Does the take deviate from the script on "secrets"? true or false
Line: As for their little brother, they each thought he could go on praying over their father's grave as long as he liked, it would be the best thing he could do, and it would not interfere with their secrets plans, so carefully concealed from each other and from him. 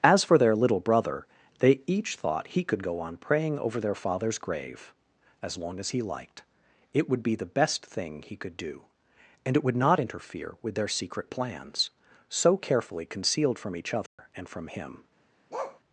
true